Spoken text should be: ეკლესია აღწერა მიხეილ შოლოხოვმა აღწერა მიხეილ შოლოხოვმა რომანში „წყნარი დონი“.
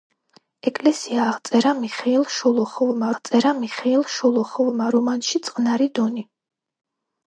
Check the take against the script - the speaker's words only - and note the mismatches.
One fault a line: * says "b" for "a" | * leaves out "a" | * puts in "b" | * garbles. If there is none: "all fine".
all fine